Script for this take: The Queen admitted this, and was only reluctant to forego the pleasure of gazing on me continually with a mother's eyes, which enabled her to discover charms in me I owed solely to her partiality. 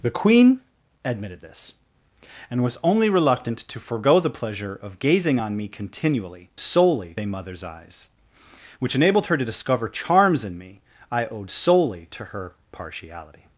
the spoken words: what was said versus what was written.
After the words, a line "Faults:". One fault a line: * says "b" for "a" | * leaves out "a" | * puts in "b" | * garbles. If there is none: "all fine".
The Queen admitted this, and was only reluctant to forego the pleasure of gazing on me continually solely a mother's eyes, which enabled her to discover charms in me I owed solely to her partiality.
Faults:
* says "solely" for "with"